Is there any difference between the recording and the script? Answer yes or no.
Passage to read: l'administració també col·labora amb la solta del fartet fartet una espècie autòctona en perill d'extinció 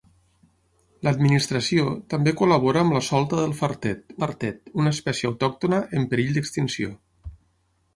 no